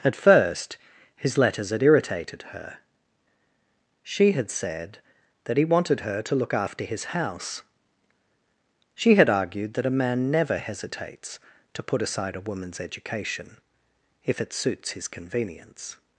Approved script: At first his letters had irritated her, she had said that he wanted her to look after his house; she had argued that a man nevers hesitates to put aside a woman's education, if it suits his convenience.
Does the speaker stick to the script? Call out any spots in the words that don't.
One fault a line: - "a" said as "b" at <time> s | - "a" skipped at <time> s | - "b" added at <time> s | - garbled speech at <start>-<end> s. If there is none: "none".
- "nevers" said as "never" at 10.3 s